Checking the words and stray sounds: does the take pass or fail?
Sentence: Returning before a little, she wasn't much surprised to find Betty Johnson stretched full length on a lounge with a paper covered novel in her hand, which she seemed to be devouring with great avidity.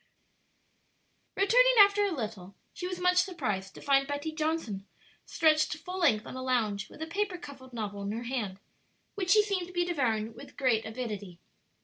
fail